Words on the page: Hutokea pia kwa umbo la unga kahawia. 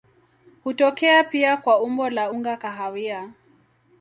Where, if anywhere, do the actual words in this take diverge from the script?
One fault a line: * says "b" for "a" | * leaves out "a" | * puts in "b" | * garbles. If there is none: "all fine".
all fine